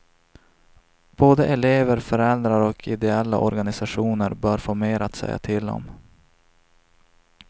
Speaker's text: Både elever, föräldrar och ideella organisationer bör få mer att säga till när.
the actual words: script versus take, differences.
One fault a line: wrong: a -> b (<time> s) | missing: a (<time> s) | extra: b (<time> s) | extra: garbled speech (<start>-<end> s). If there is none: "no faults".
wrong: när -> om (5.7 s)